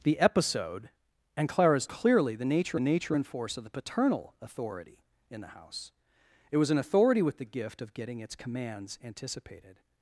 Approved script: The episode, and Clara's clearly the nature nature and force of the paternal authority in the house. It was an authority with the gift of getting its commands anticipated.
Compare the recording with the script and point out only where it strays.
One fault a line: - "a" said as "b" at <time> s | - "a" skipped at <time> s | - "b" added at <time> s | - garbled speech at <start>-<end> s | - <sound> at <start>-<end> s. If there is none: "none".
none